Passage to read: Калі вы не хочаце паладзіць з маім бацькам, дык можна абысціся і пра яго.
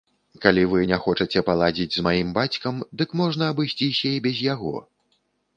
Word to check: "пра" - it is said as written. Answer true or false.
false